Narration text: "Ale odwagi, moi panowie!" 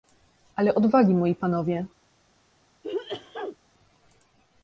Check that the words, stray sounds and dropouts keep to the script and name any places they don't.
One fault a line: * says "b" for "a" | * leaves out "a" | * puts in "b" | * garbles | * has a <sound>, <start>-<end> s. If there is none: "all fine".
* has a sneeze, 2.8-3.6 s